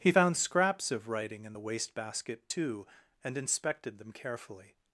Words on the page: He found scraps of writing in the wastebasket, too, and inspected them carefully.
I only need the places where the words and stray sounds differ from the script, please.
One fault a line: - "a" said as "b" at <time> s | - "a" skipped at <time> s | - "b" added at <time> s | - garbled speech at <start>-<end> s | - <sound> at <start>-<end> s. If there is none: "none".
none